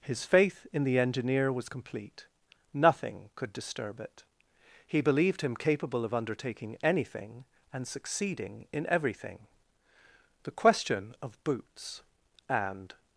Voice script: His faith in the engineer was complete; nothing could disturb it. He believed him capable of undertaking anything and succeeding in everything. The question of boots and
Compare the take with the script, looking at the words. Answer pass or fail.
pass